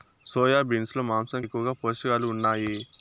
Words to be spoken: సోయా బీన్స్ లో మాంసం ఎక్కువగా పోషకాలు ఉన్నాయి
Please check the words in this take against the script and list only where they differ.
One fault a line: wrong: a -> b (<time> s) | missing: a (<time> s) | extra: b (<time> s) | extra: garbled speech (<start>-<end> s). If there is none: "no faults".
no faults